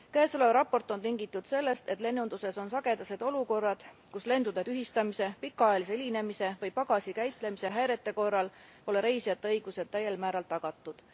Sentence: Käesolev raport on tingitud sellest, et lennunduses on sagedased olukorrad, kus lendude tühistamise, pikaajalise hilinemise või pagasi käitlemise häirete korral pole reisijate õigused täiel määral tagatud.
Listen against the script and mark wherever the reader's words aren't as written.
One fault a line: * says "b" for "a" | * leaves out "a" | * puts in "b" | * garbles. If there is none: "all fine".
all fine